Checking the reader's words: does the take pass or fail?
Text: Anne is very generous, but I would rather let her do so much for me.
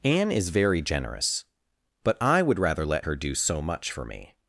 pass